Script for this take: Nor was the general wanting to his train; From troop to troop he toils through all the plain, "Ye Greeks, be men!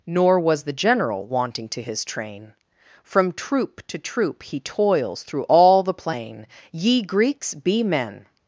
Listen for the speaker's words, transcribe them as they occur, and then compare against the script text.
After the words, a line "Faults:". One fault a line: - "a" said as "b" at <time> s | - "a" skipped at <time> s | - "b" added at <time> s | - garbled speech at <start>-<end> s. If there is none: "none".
Nor was the general wanting to his train; From troop to troop he toils through all the plain, "Ye Greeks, be men!
Faults:
none